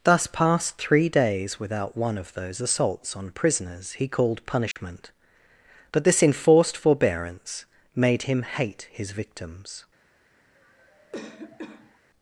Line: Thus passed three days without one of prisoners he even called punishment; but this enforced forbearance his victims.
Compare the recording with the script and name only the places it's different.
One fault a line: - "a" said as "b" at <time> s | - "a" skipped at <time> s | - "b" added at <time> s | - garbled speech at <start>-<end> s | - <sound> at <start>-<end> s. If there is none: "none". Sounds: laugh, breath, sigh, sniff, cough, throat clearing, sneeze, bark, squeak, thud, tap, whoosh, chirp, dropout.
- "those assaults on" added at 2.3 s
- "even" skipped at 4.1 s
- dropout at 4.7-4.8 s
- "made him hate" added at 8.0 s
- cough at 10.5-12.0 s